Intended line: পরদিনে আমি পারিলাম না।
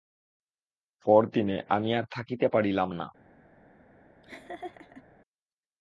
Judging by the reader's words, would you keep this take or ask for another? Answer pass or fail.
fail